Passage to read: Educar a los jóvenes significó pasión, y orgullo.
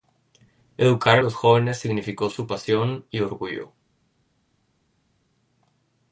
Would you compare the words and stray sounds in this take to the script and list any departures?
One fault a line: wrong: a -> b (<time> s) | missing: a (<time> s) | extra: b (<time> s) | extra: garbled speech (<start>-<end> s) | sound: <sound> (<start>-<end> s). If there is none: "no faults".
extra: su (2.3 s)